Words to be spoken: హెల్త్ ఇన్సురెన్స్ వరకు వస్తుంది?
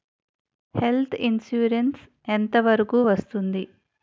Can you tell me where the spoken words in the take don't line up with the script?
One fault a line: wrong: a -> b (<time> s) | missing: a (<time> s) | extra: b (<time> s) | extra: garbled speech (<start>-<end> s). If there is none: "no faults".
extra: ఎంత (2.3 s)